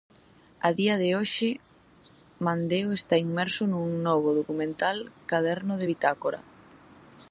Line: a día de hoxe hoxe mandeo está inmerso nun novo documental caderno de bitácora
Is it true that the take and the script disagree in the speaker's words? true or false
true